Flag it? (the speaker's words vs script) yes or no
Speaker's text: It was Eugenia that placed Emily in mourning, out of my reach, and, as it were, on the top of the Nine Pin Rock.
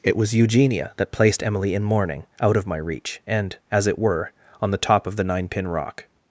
no